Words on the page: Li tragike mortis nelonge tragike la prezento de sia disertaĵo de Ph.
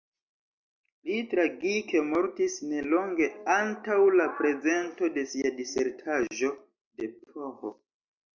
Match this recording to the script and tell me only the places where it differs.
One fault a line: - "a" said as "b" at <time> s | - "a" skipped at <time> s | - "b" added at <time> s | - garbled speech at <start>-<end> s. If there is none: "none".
- "tragike" said as "antaŭ" at 3.6 s